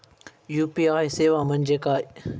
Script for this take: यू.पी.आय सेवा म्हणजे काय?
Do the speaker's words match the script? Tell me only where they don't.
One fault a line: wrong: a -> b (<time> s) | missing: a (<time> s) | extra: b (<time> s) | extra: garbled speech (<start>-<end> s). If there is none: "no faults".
no faults